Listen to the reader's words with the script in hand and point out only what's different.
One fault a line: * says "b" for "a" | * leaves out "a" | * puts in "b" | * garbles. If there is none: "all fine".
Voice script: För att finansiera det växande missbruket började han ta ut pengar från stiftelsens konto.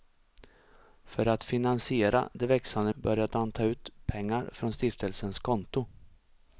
* leaves out "missbruket"